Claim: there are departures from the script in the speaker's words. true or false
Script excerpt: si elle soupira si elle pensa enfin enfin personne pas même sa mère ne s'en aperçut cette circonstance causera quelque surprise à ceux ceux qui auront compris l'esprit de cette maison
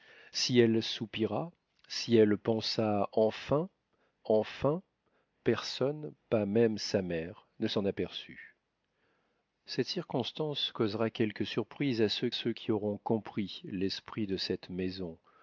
false